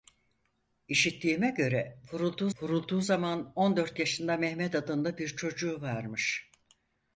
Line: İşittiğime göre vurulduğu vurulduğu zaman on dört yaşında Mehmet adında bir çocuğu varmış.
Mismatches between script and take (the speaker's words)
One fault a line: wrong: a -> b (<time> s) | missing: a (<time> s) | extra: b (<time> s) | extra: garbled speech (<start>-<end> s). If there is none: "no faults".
no faults